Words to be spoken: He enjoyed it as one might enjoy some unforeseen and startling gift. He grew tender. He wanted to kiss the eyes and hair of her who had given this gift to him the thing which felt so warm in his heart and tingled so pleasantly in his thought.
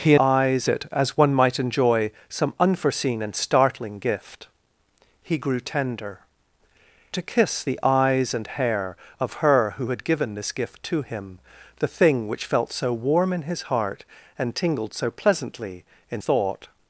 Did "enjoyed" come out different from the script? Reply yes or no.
yes